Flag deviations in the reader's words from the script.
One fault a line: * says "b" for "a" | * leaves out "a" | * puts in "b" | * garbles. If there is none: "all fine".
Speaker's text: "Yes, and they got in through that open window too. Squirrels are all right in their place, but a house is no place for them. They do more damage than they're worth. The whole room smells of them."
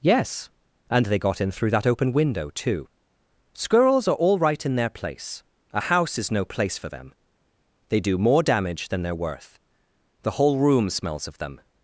* leaves out "but"